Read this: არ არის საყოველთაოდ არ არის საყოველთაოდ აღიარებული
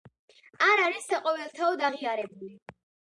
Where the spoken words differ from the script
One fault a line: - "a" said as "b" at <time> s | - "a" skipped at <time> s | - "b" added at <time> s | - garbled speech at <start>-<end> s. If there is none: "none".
- "არ არის საყოველთაოდ" skipped at 1.8 s